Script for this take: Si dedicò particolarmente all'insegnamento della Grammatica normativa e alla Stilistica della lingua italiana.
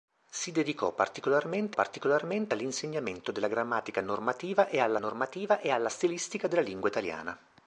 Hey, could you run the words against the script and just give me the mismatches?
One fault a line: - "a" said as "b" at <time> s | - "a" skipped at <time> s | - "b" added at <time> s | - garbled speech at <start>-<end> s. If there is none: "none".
- "particolarmente" added at 1.7 s
- "normativa e alla" added at 5.0 s